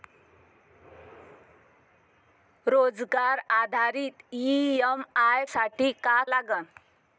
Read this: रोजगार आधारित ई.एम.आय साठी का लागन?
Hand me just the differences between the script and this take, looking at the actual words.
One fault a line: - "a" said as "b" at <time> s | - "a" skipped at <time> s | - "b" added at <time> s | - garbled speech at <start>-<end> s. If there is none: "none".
none